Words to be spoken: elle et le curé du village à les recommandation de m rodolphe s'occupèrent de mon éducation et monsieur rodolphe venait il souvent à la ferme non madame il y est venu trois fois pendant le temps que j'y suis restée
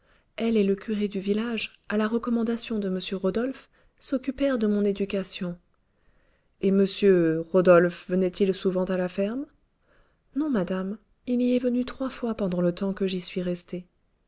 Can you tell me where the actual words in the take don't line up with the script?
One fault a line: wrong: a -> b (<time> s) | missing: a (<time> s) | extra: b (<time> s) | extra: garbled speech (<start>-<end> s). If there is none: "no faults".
wrong: les -> la (1.9 s)